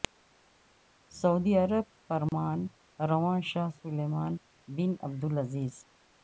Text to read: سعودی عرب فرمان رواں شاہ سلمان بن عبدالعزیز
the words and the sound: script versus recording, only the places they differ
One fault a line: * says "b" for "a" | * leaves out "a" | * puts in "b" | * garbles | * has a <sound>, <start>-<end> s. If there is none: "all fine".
* has a dropout, 2.3-2.3 s